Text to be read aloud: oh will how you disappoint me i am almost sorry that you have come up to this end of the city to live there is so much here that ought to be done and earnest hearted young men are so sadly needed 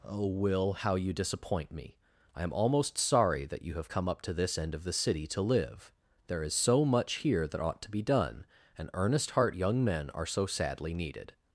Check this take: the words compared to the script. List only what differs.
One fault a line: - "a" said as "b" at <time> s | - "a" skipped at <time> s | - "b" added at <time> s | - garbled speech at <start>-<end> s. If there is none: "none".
- "hearted" said as "heart" at 9.3 s